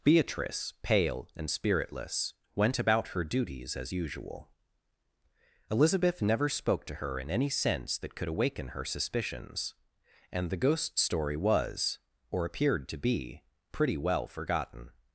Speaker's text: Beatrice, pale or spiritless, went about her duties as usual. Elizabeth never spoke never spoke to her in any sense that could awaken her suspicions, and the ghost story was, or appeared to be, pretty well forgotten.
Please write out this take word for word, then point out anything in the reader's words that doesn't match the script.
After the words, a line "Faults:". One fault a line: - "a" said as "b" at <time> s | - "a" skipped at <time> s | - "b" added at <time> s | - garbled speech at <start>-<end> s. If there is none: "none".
Beatrice, pale and spiritless, went about her duties as usual. Elizabeth never spoke to her in any sense that could awaken her suspicions, and the ghost story was, or appeared to be, pretty well forgotten.
Faults:
- "or" said as "and" at 1.4 s
- "never spoke" skipped at 6.8 s